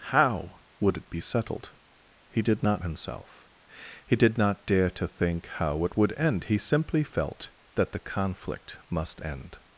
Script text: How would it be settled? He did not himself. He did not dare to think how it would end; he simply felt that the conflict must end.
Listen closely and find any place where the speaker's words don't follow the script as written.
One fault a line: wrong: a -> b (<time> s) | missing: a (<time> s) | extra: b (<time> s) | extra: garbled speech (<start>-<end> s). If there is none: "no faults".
no faults